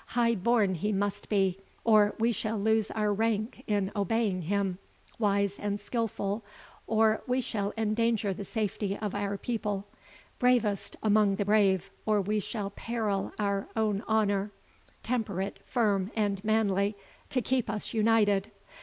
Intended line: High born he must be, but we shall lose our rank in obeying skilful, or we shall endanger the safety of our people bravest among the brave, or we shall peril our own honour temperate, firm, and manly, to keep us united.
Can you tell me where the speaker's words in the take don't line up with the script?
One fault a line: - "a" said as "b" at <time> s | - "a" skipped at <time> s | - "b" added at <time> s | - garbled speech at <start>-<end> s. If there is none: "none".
- "but" said as "or" at 1.8 s
- "him wise and" added at 4.4 s